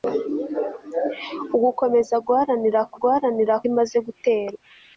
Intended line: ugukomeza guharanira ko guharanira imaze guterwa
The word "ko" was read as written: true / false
true